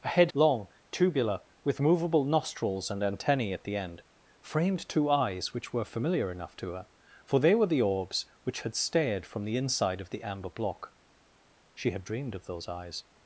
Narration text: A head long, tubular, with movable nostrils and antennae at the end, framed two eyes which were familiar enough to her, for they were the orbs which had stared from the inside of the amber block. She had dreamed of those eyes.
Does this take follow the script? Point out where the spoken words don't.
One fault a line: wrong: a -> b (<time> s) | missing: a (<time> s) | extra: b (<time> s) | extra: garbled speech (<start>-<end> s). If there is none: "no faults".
no faults